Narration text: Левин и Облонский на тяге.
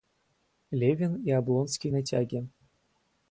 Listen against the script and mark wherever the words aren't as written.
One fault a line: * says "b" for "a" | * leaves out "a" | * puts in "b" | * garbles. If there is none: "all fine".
all fine